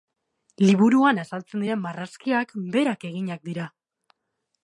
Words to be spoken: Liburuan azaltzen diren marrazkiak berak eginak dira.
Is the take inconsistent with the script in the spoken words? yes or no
no